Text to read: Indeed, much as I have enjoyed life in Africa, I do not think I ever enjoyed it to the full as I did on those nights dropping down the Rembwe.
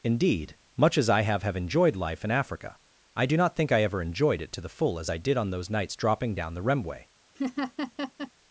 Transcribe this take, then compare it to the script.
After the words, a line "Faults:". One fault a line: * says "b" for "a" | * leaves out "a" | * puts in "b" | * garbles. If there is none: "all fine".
Indeed, much as I have have enjoyed life in Africa, I do not think I ever enjoyed it to the full as I did on those nights dropping down the Rembwe.
Faults:
* puts in "have"